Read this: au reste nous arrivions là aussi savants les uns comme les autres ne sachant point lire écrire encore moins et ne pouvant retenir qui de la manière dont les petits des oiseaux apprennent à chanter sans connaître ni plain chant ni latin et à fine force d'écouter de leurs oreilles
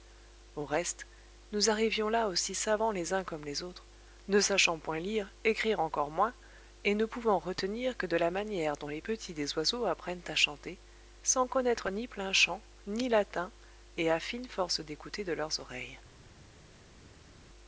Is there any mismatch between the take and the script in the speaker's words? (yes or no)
yes